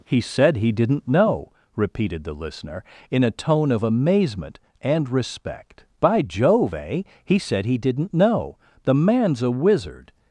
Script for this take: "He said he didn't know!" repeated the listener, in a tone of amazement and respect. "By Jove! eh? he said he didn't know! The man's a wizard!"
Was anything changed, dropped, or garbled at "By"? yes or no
no